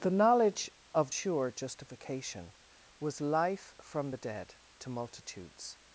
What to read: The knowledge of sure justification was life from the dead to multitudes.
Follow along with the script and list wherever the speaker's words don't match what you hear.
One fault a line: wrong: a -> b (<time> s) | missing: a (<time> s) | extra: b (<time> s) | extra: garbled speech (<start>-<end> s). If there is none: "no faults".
no faults